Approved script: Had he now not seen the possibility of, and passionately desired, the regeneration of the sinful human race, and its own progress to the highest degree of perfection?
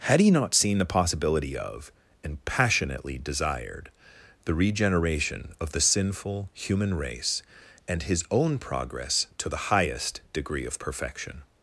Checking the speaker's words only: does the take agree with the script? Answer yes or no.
no